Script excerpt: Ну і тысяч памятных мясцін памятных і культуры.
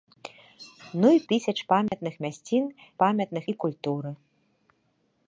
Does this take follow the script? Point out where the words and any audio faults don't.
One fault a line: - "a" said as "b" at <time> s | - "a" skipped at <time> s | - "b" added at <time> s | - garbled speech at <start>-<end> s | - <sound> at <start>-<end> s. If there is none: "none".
- dropout at 1.9-1.9 s